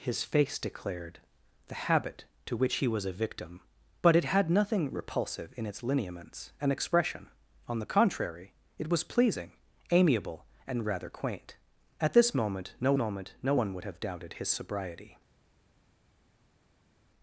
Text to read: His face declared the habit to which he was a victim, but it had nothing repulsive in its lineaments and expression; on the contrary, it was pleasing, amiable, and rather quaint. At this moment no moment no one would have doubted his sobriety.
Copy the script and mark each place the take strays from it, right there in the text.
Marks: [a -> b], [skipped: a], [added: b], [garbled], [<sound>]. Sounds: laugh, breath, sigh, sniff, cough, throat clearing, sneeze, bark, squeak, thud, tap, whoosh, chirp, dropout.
His face declared the habit to which he was a victim, but it had nothing repulsive in its lineaments and expression; on the contrary, it was pleasing, amiable, and rather quaint. At this moment no moment no one would have doubted his sobriety.